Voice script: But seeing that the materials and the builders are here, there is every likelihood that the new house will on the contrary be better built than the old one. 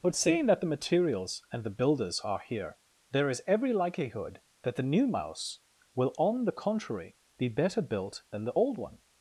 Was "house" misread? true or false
true